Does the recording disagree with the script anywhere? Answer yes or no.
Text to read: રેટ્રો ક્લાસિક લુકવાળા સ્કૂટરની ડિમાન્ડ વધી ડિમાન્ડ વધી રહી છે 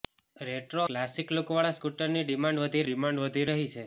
no